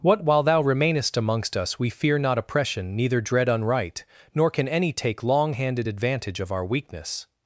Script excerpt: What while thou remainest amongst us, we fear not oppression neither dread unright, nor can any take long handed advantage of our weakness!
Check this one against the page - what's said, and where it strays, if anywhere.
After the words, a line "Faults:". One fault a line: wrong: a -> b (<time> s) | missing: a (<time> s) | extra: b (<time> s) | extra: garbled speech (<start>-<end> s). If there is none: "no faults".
What while thou remainest amongst us, we fear not oppression neither dread unright, nor can any take long handed advantage of our weakness!
Faults:
no faults